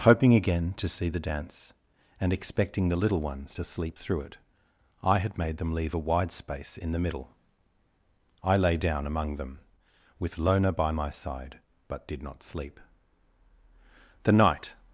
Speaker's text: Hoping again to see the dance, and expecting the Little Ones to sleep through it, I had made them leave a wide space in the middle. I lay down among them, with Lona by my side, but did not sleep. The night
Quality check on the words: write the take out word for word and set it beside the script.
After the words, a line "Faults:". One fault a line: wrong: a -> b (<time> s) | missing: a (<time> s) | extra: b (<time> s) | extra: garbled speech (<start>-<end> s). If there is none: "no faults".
Hoping again to see the dance, and expecting the Little Ones to sleep through it, I had made them leave a wide space in the middle. I lay down among them, with Lona by my side, but did not sleep. The night
Faults:
no faults